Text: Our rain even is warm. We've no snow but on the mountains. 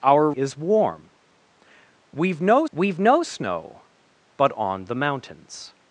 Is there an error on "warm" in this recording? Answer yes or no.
yes